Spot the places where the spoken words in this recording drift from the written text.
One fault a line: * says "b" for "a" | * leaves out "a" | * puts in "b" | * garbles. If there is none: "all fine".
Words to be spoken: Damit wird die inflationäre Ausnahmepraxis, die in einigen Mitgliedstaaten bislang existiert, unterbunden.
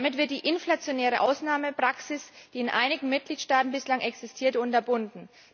all fine